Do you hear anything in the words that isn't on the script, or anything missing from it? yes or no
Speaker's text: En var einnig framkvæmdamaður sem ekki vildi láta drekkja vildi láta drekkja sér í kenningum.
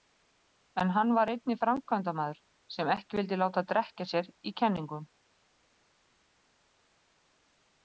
yes